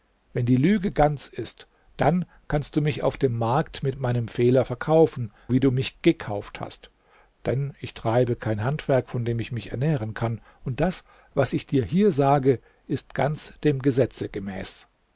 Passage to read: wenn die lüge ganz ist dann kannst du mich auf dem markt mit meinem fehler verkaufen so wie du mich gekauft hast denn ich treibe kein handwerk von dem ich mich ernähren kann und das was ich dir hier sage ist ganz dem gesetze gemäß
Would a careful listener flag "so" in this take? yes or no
yes